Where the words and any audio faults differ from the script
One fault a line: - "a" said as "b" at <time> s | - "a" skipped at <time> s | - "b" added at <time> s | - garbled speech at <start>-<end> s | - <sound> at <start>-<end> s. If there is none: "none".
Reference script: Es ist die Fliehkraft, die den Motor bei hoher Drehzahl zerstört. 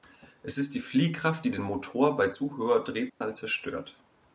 - "zu" added at 2.3 s
- dropout at 3.1-3.2 s